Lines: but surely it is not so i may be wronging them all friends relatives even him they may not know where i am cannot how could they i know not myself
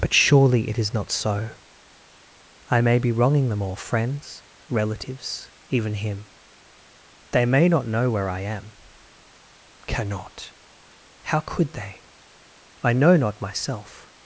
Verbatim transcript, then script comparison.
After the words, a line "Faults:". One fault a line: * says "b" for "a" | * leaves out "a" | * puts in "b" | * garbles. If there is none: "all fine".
but surely it is not so i may be wronging them all friends relatives even him they may not know where i am cannot how could they i know not myself
Faults:
all fine